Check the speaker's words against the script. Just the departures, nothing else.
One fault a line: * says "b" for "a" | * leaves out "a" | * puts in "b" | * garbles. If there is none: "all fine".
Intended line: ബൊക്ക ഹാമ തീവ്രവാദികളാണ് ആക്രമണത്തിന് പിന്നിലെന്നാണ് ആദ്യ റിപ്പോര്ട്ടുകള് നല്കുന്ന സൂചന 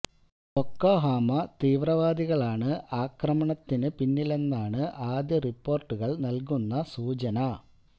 all fine